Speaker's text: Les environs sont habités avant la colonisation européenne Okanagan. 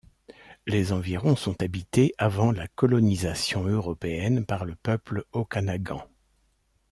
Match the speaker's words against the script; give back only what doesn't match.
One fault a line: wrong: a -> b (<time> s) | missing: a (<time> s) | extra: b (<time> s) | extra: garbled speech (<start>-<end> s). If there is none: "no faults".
extra: par le peuple (4.5 s)